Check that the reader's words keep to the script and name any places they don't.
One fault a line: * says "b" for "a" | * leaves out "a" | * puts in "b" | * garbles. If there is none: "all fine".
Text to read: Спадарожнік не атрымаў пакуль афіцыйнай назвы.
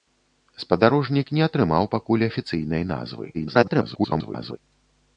* garbles